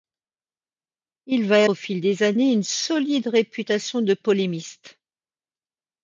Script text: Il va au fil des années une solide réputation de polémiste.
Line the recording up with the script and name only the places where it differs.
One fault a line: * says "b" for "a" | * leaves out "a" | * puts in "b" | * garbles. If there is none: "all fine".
all fine